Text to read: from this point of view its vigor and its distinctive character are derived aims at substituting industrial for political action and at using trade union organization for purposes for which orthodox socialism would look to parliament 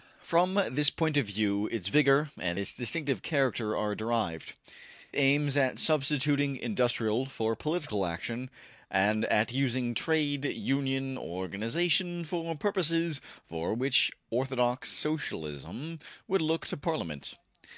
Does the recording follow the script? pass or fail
pass